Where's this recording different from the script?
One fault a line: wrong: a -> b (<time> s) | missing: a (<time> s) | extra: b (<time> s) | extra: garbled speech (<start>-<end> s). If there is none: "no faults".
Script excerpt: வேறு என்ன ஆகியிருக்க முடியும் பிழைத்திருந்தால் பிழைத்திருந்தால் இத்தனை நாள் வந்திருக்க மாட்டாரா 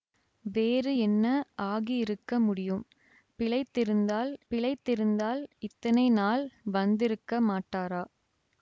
no faults